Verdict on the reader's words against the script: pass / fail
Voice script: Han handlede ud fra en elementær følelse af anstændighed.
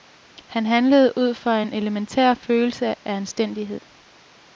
pass